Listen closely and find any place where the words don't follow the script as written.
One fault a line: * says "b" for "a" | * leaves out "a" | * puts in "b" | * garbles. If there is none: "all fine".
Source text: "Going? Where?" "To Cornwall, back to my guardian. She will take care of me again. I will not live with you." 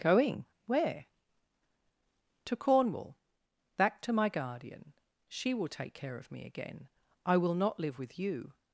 all fine